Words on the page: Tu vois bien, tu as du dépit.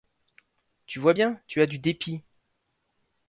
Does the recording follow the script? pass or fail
pass